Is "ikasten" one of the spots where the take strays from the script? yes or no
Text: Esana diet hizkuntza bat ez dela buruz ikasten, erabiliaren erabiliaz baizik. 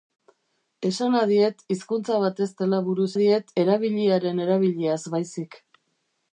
yes